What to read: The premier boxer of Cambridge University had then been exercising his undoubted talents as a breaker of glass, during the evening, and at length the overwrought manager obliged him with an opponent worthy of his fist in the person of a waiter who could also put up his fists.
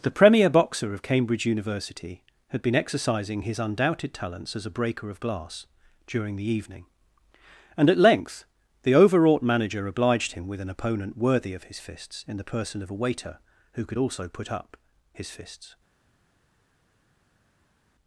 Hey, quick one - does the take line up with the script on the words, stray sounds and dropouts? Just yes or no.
no